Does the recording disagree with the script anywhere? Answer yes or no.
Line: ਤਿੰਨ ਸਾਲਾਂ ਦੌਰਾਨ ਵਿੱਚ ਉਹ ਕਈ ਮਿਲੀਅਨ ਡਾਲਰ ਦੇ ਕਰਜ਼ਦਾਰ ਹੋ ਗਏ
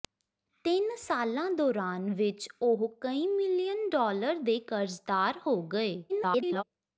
yes